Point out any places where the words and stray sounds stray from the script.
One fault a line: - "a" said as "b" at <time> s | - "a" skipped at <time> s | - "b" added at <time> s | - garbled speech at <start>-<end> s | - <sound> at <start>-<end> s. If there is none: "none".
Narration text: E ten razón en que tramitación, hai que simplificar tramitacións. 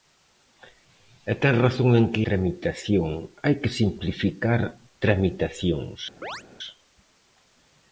- chirp at 6.2-6.4 s